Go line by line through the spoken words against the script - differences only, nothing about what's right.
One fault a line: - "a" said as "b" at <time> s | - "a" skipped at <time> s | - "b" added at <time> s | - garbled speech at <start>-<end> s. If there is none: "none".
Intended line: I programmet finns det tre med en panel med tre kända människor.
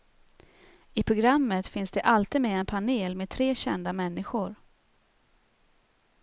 - "tre" said as "alltid" at 2.0 s